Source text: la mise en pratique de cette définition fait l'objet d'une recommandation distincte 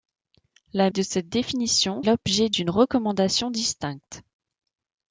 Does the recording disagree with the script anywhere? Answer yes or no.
yes